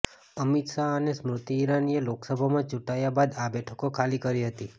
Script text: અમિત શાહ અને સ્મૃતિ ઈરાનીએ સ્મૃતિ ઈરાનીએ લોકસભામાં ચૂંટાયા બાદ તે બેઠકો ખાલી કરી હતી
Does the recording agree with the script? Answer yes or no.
no